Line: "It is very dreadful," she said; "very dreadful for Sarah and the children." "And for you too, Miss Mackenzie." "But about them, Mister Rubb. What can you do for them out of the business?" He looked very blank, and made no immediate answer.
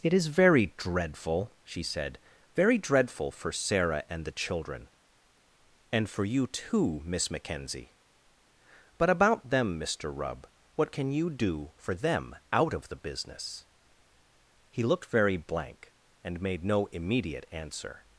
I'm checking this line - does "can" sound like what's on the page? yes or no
yes